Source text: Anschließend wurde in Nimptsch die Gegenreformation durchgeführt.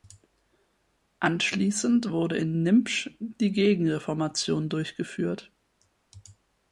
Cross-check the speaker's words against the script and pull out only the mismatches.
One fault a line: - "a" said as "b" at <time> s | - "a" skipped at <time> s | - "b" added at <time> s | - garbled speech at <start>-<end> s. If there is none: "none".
none